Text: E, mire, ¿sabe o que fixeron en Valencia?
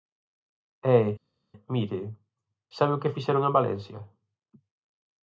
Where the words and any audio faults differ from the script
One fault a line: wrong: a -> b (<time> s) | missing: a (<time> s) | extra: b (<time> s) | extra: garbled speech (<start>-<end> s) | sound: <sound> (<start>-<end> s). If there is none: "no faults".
no faults